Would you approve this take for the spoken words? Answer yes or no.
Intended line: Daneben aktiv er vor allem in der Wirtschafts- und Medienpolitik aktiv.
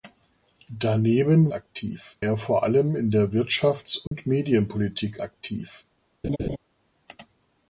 yes